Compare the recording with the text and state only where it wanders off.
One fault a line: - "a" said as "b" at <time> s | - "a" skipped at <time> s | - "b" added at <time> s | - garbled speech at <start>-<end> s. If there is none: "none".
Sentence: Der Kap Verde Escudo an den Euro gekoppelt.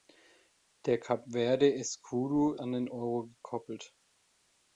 none